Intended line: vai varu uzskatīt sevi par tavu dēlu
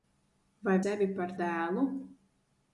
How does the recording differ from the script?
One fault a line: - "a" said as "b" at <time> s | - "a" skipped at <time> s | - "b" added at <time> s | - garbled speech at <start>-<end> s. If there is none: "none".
- "varu uzskatīt" skipped at 0.8 s
- "tavu" skipped at 1.4 s